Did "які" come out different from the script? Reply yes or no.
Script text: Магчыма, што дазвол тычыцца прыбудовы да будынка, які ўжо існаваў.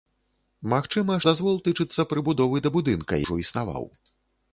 yes